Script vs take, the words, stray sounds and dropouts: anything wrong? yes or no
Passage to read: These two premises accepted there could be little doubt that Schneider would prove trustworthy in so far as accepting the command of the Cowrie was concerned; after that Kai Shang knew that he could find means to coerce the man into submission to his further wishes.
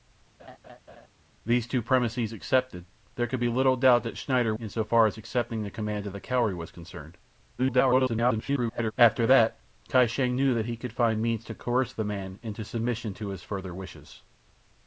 yes